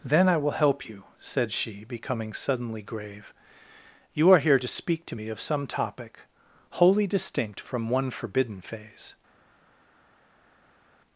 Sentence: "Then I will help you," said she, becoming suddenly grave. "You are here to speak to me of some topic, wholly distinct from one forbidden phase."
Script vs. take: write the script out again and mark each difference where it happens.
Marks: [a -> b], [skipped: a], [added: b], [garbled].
"Then I will help you," said she, becoming suddenly grave. "You are here to speak to me of some topic, wholly distinct from one forbidden phase."